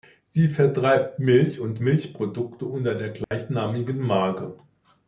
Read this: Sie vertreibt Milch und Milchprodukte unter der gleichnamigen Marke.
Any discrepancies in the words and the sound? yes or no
yes